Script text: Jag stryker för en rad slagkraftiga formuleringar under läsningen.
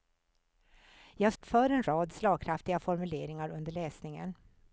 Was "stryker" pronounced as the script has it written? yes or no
no